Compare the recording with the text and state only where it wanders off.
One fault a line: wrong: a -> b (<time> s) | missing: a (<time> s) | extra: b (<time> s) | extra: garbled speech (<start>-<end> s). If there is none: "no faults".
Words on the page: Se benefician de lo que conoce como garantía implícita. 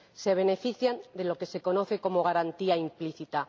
extra: se (1.4 s)